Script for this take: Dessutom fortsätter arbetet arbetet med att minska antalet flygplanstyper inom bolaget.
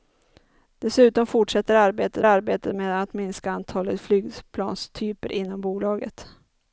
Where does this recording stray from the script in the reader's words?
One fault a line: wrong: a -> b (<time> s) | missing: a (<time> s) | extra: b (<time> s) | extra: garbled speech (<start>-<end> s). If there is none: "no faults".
no faults